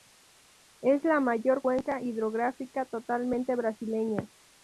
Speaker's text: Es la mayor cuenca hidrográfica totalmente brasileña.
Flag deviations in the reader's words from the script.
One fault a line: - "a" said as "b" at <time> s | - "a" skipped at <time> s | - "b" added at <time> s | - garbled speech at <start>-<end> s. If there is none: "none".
none